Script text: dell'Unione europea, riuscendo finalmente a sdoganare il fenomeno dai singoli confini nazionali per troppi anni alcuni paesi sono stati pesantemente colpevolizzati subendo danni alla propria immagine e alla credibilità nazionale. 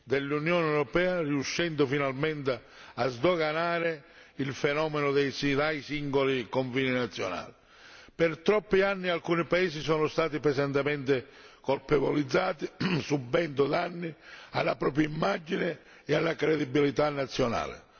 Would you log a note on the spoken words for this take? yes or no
no